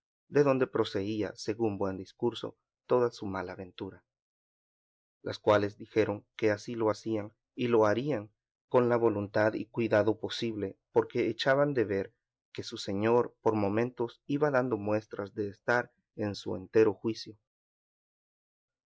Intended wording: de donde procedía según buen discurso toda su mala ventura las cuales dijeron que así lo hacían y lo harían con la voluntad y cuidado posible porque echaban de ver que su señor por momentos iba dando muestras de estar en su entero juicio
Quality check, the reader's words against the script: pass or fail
pass